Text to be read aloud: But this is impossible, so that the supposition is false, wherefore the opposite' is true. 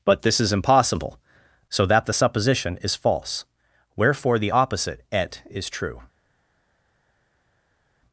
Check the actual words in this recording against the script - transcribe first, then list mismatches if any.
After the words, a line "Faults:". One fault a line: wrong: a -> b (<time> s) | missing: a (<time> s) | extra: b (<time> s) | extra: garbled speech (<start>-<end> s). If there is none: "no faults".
But this is impossible, so that the supposition is false, wherefore the opposite' et is true.
Faults:
extra: et (5.1 s)